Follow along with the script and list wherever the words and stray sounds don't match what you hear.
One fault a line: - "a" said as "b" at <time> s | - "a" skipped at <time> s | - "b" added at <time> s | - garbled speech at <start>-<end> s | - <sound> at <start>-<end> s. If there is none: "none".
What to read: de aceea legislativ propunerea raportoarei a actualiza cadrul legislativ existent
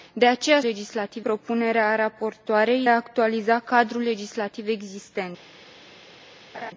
- laugh at 6.5-6.7 s